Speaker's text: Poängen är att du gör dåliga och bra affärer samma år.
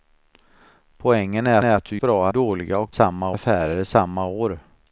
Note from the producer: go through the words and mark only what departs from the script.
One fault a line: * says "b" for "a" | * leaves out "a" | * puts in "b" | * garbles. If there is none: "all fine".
* puts in "är"
* says "bra" for "gör"
* says "samma" for "bra"